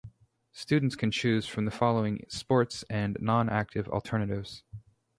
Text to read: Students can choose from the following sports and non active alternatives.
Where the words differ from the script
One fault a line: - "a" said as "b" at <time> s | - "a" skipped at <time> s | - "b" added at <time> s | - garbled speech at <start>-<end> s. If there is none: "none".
none